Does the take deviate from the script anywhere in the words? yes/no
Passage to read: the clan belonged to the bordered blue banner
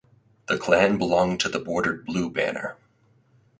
no